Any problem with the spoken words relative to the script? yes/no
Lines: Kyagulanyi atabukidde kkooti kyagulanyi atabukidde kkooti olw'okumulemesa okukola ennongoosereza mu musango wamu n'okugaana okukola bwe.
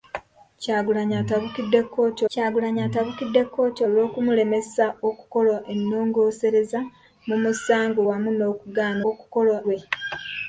no